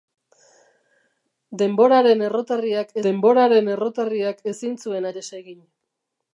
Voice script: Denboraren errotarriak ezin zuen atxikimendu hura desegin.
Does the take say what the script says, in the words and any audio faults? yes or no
no